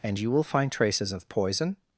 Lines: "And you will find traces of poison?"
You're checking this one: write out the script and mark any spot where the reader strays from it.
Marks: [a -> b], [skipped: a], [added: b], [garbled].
"And you will find traces of poison?"